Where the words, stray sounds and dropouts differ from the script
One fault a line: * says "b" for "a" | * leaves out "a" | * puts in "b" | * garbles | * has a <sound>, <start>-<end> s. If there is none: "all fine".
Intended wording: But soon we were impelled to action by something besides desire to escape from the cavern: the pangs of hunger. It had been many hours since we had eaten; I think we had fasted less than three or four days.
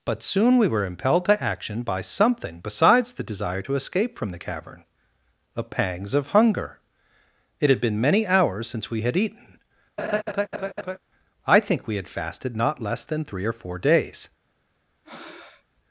* puts in "the"
* has a laugh, 10.0-11.0 s
* puts in "not"
* has a breath, 15.0-15.6 s